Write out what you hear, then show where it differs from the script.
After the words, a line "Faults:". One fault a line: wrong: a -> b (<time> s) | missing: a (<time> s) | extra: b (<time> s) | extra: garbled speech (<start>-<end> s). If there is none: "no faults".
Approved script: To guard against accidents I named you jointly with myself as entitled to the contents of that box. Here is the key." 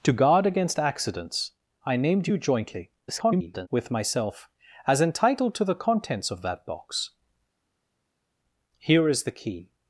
To guard against accidents I named you jointly [garbled] with myself as entitled to the contents of that box. Here is the key."
Faults:
extra: garbled speech (3.1-3.7 s)